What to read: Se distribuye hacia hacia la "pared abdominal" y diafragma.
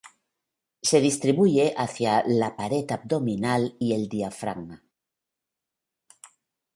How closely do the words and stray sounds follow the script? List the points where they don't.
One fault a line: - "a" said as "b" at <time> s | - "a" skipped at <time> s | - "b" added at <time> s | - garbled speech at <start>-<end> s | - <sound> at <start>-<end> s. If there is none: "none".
- "hacia" skipped at 2.2 s
- "el" added at 3.9 s